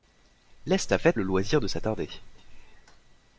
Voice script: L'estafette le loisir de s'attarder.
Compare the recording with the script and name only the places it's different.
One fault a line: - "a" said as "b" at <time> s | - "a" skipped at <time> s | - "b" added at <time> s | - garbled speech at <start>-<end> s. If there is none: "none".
none